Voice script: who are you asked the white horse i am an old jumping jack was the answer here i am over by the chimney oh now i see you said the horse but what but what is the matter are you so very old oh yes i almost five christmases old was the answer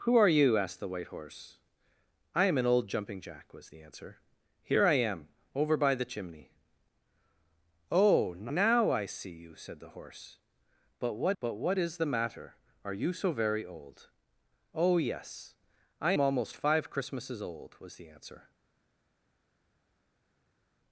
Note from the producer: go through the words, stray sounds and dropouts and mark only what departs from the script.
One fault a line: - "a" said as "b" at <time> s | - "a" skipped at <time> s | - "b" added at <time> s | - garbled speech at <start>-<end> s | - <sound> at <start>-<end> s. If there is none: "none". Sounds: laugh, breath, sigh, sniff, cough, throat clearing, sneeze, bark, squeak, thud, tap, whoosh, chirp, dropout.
none